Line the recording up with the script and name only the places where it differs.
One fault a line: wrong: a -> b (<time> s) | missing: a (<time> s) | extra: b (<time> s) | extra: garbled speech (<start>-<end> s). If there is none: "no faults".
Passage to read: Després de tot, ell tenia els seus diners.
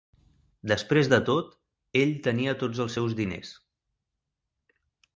extra: tots (2.6 s)